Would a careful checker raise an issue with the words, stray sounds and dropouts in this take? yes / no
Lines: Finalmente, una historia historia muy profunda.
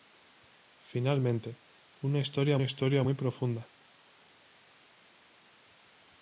no